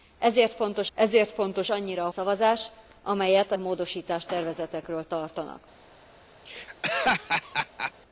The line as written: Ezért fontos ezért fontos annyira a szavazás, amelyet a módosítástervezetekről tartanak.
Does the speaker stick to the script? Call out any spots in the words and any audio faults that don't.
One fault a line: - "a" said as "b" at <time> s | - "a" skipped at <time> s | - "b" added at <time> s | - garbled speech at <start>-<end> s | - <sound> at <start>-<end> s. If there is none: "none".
- laugh at 6.4-7.9 s